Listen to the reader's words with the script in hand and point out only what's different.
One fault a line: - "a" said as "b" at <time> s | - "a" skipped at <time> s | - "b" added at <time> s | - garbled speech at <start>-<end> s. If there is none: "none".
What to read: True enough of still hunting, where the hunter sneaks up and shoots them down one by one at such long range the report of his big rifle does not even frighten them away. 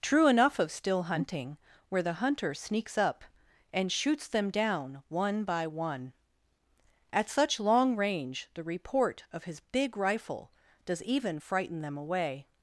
- "not" skipped at 11.0 s